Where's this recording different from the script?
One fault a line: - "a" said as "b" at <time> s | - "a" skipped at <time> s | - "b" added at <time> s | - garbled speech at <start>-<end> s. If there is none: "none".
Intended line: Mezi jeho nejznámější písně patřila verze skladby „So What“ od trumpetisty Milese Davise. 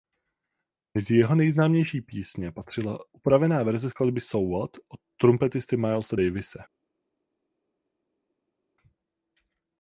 - "upravená" added at 3.1 s